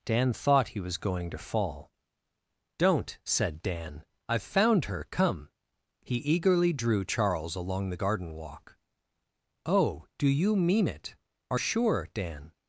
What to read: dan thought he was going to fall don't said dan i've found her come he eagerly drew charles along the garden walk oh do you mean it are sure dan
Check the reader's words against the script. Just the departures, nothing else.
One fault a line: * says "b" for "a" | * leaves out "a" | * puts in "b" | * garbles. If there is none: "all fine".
all fine